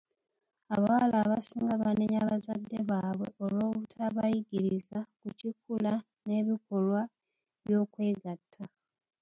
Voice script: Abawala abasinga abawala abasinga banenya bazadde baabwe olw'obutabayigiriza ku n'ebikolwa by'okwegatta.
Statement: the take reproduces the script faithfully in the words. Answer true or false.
false